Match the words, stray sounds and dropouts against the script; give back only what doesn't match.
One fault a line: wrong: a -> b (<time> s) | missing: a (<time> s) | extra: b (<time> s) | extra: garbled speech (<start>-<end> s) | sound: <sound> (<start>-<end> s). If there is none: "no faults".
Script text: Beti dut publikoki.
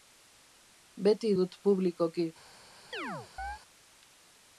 sound: chirp (2.9-3.6 s)